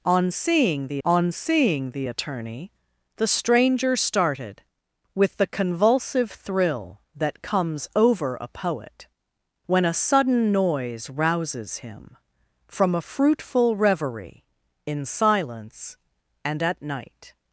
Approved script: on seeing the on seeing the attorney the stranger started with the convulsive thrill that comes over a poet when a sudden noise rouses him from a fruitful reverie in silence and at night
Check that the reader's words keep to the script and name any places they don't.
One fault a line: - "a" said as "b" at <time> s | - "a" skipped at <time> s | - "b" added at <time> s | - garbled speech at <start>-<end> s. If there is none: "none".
none